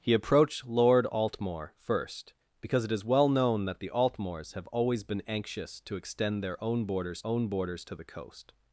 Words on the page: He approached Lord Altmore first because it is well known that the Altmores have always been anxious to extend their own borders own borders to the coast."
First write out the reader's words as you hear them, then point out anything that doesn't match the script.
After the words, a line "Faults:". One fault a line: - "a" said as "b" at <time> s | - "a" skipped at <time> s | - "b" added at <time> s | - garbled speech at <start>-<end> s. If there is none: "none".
He approached Lord Altmore first because it is well known that the Altmores have always been anxious to extend their own borders own borders to the coast."
Faults:
none